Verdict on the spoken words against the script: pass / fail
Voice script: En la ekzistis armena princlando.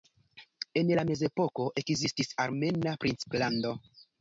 fail